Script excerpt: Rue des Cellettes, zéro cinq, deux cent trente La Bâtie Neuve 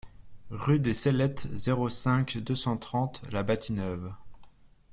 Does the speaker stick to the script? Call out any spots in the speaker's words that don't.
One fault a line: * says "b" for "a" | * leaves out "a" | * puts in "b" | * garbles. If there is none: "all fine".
all fine